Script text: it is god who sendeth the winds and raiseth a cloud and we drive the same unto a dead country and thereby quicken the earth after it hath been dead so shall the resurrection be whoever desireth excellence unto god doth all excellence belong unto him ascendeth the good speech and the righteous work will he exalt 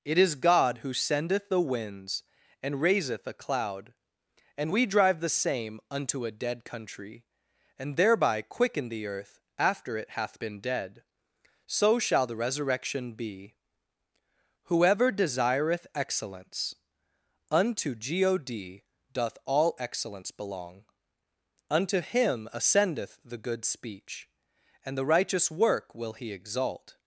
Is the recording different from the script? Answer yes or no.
no